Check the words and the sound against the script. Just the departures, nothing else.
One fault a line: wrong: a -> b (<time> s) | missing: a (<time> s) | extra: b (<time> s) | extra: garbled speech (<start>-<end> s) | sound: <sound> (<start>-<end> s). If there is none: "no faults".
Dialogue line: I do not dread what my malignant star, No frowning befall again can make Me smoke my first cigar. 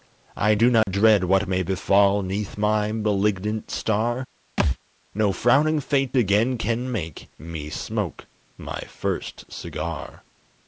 sound: dropout (0.8-0.9 s)
extra: may befall Neath (1.5 s)
sound: thud (4.6-4.8 s)
wrong: befall -> fate (5.8 s)